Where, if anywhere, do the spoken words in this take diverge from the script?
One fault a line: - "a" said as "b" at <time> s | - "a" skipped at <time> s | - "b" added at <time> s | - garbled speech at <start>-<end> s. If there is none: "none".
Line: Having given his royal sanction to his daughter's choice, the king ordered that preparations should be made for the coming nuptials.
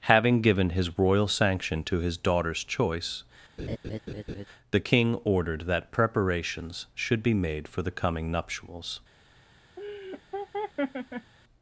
none